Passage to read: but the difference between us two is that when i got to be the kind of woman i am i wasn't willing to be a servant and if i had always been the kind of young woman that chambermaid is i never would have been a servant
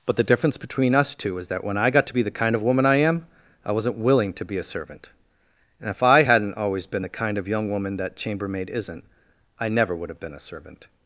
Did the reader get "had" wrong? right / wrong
wrong